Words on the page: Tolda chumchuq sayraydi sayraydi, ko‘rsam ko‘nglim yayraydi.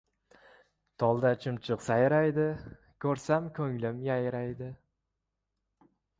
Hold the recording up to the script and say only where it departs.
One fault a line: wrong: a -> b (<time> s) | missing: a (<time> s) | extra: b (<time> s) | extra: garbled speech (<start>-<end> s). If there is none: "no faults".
missing: sayraydi (2.5 s)